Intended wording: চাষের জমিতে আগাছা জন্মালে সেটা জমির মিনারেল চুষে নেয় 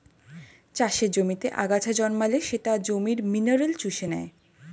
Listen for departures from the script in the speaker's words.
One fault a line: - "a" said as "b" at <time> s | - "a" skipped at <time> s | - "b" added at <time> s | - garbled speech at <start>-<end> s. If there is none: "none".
none